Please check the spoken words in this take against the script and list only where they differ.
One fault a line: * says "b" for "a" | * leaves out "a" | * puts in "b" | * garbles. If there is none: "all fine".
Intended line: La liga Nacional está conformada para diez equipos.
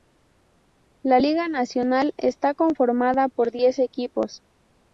* says "por" for "para"